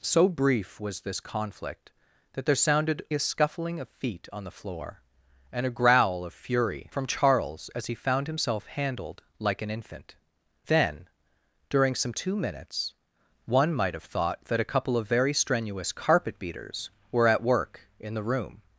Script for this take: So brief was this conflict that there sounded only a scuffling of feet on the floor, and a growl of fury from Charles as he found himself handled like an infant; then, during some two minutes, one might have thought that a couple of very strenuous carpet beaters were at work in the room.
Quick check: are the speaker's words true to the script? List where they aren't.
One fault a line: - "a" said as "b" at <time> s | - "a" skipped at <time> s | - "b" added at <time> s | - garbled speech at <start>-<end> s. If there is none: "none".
- "only" skipped at 3.0 s